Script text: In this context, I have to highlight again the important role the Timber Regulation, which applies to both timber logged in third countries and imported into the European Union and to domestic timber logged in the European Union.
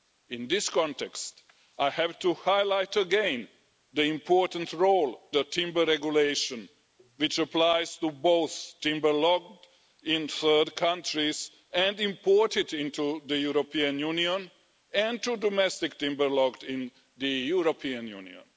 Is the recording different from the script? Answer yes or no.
no